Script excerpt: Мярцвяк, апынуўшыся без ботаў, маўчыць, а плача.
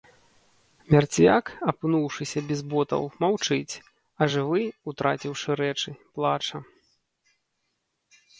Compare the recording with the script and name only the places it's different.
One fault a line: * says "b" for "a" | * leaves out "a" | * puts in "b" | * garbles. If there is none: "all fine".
* puts in "жывы утраціўшы рэчы"